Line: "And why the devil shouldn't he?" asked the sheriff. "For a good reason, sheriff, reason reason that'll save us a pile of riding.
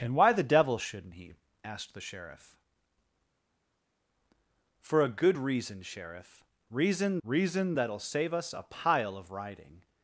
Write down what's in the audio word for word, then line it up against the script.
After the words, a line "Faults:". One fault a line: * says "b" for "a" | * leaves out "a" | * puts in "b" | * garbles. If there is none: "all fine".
"And why the devil shouldn't he?" asked the sheriff. "For a good reason, sheriff, reason reason that'll save us a pile of riding.
Faults:
all fine